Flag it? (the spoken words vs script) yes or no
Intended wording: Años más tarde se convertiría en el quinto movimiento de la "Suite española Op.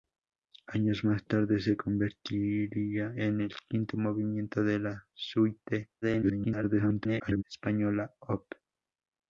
yes